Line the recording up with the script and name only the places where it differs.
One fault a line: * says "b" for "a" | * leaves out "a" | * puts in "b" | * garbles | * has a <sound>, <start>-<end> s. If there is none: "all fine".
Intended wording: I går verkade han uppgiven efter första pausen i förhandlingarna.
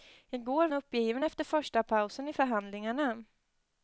* leaves out "verkade"